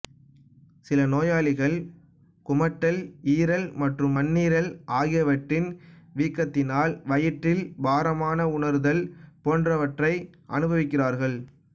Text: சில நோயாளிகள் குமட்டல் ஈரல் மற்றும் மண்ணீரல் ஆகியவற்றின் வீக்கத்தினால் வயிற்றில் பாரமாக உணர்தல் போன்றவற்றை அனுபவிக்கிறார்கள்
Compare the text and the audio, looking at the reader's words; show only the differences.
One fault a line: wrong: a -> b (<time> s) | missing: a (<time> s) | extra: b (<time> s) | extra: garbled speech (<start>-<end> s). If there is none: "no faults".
no faults